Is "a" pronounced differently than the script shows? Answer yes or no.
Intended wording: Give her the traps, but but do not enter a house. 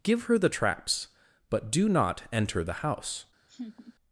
yes